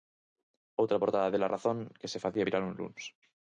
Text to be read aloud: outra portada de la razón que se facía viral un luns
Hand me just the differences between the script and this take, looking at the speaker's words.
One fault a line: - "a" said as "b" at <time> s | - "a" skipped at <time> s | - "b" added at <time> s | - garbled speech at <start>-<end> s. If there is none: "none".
none